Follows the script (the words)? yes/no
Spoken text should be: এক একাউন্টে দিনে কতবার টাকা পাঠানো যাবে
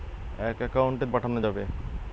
no